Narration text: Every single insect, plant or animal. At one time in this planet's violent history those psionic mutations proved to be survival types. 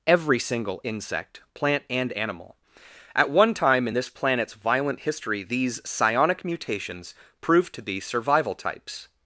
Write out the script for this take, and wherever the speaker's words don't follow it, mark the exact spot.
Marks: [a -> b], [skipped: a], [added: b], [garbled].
Every single insect, plant [or -> and] animal. At one time in this planet's violent history [those -> these] psionic mutations proved to be survival types.